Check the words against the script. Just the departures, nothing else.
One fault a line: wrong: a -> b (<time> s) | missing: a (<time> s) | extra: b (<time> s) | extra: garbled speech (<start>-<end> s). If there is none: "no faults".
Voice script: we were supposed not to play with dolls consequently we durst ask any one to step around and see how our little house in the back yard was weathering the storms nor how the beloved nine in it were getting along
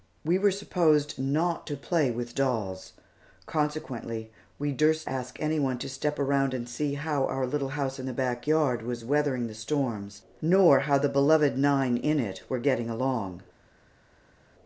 no faults